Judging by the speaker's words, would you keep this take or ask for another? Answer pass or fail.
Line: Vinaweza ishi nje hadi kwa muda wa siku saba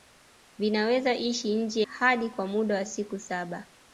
pass